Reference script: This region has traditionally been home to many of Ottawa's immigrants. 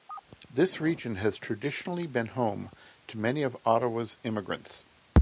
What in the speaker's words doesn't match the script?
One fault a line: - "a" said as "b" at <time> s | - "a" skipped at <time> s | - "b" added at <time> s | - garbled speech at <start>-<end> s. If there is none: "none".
none